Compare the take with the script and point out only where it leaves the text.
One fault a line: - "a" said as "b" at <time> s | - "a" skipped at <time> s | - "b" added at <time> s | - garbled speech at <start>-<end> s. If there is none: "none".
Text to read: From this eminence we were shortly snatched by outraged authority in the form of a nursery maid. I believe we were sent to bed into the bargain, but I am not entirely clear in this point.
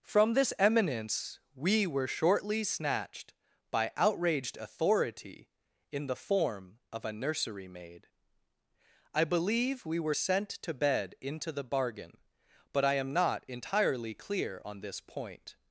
- "in" said as "on" at 14.6 s